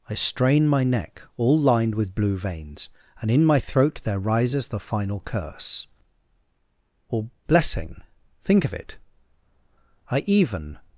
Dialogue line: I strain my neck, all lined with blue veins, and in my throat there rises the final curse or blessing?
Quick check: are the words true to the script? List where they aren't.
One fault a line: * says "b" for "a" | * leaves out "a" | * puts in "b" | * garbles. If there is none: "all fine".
* puts in "Think of it I even"